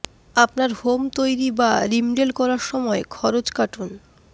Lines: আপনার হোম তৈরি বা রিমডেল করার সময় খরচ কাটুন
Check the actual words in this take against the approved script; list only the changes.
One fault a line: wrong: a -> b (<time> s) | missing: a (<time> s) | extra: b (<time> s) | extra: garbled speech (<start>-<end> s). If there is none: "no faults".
no faults